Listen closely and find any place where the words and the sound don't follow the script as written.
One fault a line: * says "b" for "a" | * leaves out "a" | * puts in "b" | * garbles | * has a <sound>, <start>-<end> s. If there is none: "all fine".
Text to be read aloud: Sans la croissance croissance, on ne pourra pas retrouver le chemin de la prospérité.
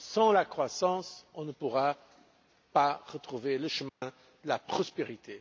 * leaves out "croissance"
* has a dropout, 3.9-4.0 s